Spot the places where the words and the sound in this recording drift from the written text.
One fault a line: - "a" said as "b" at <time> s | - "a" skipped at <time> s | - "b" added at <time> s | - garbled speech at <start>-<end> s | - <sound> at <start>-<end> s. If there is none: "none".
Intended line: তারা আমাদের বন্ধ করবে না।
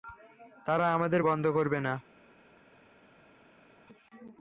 none